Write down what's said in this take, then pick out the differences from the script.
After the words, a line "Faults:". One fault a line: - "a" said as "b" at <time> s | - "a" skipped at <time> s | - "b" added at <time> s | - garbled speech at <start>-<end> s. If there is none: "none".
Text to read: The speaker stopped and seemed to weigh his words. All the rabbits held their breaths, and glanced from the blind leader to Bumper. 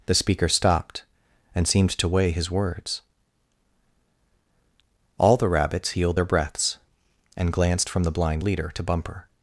The speaker stopped and seemed to weigh his words. All the rabbits healed their breaths, and glanced from the blind leader to Bumper.
Faults:
- "held" said as "healed" at 5.9 s